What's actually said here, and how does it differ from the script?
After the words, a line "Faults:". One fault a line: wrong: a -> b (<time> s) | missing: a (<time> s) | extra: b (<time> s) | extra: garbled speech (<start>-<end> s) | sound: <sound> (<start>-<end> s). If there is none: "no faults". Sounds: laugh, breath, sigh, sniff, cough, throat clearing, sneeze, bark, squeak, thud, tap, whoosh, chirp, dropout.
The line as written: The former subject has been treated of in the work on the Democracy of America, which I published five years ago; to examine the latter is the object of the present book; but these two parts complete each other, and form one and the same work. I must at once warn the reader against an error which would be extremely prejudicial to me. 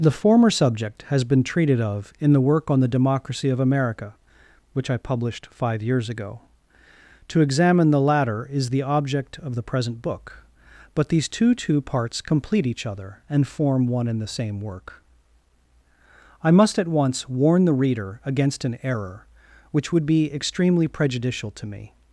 The former subject has been treated of in the work on the Democracy of America, which I published five years ago; to examine the latter is the object of the present book; but these two two parts complete each other, and form one and the same work. I must at once warn the reader against an error which would be extremely prejudicial to me.
Faults:
extra: two (11.5 s)